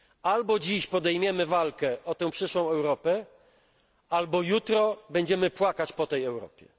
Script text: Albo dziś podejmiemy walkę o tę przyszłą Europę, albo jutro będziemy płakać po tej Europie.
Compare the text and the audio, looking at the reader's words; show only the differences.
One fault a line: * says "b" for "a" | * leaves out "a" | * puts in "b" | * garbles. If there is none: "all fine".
all fine